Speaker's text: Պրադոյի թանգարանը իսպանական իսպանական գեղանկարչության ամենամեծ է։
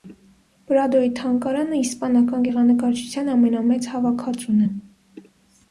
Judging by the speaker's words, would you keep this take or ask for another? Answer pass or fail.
fail